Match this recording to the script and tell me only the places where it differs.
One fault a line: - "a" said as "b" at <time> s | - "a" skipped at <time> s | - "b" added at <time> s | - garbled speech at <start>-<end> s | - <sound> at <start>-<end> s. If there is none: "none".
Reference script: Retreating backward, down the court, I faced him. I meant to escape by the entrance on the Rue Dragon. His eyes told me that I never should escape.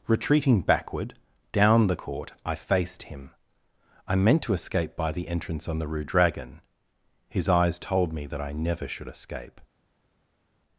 none